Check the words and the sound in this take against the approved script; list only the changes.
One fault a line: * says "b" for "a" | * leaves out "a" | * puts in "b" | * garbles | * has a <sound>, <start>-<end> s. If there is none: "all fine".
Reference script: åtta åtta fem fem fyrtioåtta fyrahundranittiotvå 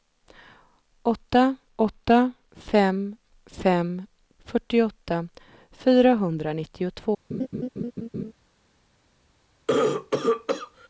* has a laugh, 7.3-8.3 s
* has a cough, 9.7-10.9 s